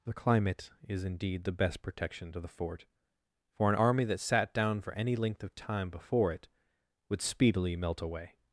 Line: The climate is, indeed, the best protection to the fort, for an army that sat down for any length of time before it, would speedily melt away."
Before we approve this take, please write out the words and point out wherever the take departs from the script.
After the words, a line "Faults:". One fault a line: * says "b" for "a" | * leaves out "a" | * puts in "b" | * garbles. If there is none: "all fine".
The climate is, indeed, the best protection to the fort, for an army that sat down for any length of time before it, would speedily melt away."
Faults:
all fine